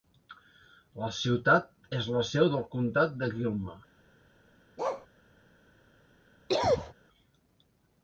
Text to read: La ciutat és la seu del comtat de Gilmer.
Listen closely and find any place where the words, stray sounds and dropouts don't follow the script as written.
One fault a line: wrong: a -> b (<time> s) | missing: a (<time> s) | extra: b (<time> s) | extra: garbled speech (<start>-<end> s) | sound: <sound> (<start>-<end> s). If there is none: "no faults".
sound: bark (4.8-5.1 s)
sound: cough (6.5-6.9 s)